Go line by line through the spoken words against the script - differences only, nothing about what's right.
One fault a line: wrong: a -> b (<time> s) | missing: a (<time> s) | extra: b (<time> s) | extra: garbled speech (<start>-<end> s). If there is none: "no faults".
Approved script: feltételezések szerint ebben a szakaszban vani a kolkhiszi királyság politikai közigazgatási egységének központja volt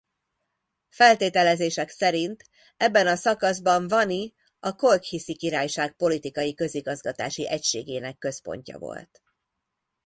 no faults